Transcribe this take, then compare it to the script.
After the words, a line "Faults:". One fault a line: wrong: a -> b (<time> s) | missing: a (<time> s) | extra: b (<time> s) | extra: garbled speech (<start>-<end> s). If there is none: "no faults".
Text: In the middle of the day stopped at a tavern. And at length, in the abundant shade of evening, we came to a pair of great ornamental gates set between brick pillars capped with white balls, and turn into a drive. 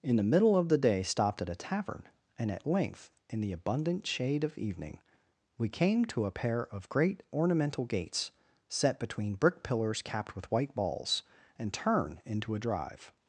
In the middle of the day stopped at a tavern. And at length, in the abundant shade of evening, we came to a pair of great ornamental gates set between brick pillars capped with white balls, and turn into a drive.
Faults:
no faults